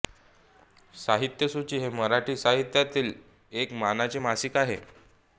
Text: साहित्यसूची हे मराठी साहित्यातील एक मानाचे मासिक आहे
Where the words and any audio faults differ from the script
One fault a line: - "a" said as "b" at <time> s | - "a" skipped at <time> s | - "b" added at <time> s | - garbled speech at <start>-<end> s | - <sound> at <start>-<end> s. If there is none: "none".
none